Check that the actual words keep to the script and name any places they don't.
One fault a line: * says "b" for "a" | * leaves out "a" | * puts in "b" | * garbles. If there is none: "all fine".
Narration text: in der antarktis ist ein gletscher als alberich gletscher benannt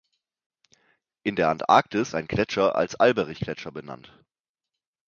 * leaves out "ist"